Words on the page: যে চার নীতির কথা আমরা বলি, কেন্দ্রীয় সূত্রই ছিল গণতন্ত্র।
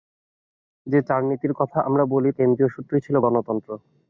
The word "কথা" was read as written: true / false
true